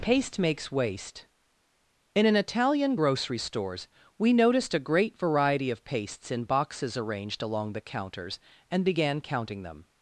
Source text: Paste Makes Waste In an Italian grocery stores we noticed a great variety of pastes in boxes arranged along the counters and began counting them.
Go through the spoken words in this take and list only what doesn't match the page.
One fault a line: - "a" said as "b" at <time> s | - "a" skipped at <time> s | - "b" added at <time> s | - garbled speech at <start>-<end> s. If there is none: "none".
none